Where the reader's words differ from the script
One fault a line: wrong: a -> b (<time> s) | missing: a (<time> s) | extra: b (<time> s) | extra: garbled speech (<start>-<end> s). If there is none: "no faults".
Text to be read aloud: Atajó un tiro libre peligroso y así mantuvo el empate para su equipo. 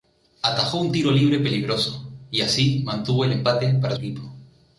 missing: su (4.0 s)